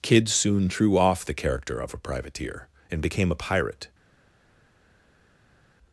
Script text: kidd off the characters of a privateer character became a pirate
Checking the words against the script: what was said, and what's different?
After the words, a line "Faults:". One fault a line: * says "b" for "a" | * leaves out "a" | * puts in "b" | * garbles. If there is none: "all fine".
kidd soon threw off the character of a privateer and became a pirate
Faults:
* puts in "soon threw"
* says "character" for "characters"
* says "and" for "character"